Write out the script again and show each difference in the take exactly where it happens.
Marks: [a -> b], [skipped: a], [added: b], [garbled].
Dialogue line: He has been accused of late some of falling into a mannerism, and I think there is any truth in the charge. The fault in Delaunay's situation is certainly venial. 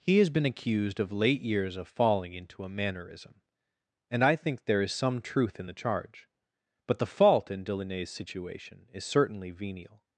He has been accused of late [some -> years] of falling into a mannerism, and I think there is [any -> some] truth in the charge. [added: But] The fault in Delaunay's situation is certainly venial.